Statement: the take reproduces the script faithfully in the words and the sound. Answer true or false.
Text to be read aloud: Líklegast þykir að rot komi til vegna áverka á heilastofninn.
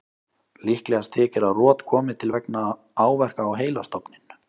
true